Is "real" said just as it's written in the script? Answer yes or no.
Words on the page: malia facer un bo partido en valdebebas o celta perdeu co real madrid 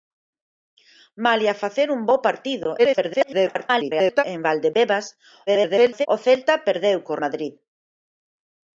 no